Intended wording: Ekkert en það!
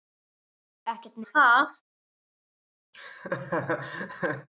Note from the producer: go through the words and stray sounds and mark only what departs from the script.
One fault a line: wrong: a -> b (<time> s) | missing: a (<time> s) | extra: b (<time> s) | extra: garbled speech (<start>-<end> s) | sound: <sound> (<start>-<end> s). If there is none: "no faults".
sound: laugh (2.9-4.5 s)